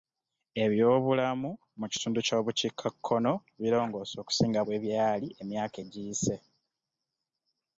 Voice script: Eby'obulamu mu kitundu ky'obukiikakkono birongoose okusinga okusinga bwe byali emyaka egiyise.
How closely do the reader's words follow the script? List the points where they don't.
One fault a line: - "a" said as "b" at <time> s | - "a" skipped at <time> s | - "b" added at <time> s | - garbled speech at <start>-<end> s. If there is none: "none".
- "okusinga" skipped at 4.6 s